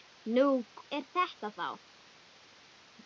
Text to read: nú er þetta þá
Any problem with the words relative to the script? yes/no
no